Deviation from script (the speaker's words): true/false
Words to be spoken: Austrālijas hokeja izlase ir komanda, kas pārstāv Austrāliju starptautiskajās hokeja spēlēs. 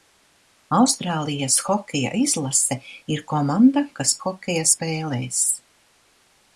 true